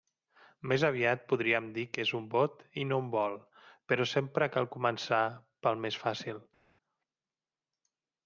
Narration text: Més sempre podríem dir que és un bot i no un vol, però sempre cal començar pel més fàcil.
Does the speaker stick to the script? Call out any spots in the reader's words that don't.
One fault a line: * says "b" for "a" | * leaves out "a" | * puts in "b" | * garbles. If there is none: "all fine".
* says "aviat" for "sempre"